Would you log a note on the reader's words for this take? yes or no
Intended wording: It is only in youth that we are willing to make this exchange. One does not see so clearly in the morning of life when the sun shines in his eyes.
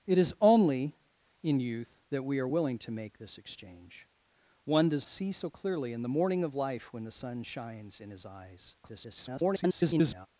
yes